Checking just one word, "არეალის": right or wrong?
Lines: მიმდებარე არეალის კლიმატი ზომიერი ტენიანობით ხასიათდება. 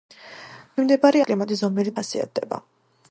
wrong